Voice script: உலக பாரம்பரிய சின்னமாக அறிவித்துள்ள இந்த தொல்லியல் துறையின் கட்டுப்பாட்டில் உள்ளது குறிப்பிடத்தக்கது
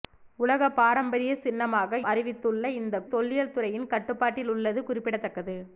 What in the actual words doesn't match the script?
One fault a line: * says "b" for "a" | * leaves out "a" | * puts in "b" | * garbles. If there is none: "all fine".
all fine